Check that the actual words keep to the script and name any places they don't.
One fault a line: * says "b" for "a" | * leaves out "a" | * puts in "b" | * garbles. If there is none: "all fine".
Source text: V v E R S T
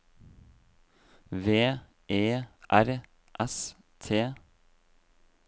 * leaves out "v"